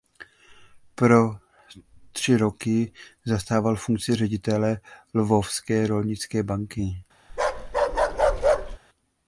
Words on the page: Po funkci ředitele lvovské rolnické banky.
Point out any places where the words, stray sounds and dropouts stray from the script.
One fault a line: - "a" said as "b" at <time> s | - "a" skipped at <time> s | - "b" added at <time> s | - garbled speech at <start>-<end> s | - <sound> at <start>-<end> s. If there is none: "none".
- "tři roky zastával" added at 2.1 s
- bark at 7.3-8.8 s